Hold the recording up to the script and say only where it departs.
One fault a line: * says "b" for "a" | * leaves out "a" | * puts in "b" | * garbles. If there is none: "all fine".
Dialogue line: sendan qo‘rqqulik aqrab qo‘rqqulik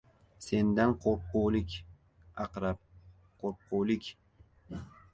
all fine